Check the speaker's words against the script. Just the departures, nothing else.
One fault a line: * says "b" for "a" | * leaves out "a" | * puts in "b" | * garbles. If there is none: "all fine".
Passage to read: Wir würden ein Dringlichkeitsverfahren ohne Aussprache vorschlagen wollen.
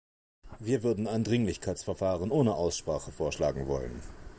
all fine